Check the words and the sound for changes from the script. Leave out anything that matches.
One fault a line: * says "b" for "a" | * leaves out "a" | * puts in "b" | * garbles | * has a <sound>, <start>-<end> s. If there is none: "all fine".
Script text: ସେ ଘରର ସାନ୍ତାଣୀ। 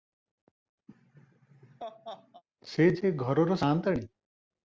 * has a laugh, 0.9-2.4 s
* puts in "ଯେ"